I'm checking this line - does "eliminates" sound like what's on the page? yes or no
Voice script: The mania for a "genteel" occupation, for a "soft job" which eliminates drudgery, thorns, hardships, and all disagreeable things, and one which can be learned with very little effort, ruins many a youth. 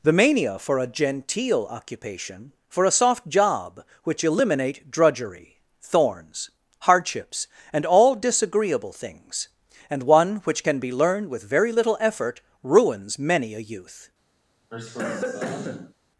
no